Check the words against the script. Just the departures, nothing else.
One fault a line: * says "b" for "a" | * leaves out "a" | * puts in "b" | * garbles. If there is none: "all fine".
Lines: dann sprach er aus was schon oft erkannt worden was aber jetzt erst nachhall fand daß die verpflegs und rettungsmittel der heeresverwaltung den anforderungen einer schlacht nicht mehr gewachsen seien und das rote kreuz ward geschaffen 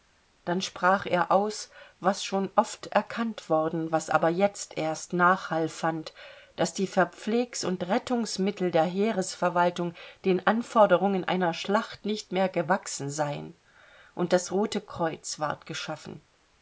all fine